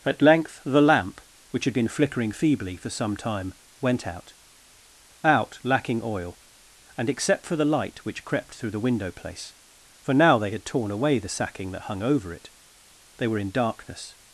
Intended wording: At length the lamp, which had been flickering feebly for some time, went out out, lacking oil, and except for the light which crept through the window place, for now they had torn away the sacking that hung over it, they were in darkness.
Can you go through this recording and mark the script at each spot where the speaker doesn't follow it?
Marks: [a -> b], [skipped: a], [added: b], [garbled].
At length the lamp, which had been flickering feebly for some time, went out out, lacking oil, and except for the light which crept through the window place, for now they had torn away the sacking that hung over it, they were in darkness.